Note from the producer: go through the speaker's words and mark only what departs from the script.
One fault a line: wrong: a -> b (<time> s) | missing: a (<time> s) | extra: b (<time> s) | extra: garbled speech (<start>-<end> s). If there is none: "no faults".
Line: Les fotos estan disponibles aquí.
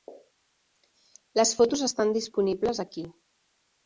no faults